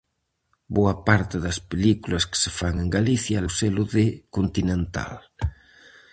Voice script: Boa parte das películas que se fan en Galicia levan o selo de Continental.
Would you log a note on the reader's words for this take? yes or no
yes